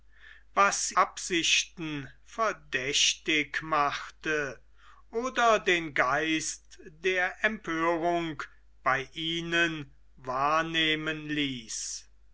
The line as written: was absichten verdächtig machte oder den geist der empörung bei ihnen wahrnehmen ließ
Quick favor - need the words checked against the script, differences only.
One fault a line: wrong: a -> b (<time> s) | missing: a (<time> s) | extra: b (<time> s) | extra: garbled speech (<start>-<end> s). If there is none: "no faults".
no faults